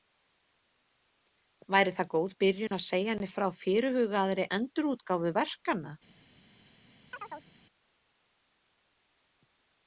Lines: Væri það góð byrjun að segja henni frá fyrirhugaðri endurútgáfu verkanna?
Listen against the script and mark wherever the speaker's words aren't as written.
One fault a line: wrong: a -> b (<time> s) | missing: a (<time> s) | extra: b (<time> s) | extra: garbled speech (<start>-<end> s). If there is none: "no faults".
no faults